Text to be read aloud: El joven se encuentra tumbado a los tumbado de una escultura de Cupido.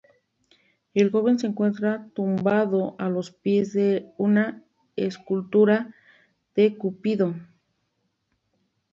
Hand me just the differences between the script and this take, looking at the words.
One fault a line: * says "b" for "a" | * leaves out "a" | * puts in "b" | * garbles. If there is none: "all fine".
* says "pies" for "tumbado"